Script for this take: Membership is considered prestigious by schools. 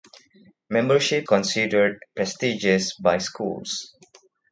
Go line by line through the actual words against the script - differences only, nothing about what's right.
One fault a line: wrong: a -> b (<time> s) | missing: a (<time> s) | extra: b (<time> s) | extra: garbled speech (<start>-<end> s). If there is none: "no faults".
missing: is (1.2 s)